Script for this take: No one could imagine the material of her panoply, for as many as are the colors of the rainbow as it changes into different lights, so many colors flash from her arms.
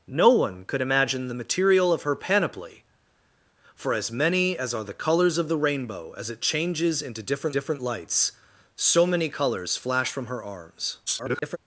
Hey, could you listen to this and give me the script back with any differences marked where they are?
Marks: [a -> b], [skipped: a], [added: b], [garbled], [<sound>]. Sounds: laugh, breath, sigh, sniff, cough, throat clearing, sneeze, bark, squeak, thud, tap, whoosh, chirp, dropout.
No one could imagine the material of her panoply, for as many as are the colors of the rainbow as it changes into different [added: different] lights, so many colors flash from her arms. [garbled]